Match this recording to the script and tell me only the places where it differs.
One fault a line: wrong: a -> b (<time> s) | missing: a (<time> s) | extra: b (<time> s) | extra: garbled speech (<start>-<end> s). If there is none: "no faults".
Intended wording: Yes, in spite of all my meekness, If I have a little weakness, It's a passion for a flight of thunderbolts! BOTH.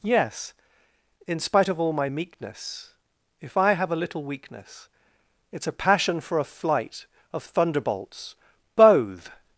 no faults